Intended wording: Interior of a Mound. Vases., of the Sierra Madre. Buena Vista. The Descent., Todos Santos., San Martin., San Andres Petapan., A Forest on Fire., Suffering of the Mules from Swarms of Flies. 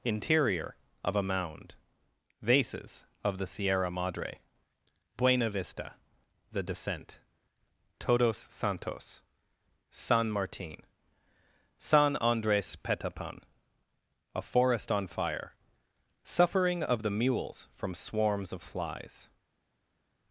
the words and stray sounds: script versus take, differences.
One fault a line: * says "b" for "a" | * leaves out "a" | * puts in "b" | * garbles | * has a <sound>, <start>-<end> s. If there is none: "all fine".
all fine